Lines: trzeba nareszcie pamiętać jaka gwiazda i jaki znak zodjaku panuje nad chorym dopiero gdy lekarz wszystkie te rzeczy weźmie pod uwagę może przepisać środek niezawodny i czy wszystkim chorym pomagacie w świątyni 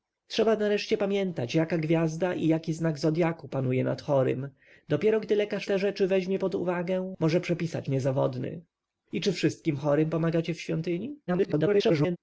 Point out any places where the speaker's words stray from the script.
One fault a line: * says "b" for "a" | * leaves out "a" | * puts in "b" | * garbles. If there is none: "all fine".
* leaves out "wszystkie"
* leaves out "środek"
* garbles